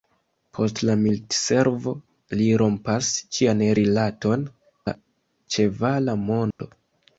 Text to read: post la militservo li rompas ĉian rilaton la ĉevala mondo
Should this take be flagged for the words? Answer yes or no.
no